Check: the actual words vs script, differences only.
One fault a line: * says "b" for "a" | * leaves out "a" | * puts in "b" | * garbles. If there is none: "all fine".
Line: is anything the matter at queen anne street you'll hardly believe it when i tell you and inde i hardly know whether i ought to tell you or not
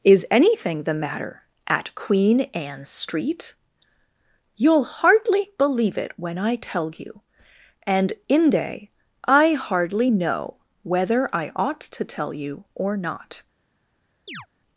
all fine